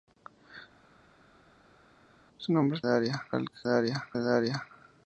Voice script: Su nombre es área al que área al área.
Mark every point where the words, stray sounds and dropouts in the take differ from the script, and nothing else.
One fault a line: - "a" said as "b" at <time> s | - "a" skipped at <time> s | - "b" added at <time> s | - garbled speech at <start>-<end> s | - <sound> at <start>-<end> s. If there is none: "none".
none